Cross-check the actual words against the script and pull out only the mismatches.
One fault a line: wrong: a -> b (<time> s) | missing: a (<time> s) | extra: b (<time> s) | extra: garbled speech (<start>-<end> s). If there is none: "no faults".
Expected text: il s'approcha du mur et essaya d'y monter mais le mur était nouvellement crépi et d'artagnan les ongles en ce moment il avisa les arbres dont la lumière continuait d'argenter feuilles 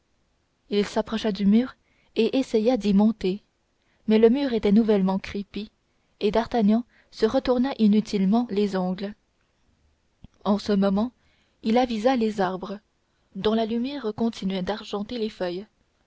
extra: se retourna inutilement (7.1 s)
extra: les (15.2 s)